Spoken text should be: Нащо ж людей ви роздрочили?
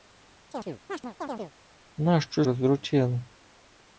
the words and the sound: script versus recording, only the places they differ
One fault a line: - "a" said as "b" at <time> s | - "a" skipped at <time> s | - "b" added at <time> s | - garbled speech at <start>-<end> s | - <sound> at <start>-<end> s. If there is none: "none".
- chirp at 0.5-1.5 s
- "ж людей ви" skipped at 2.4 s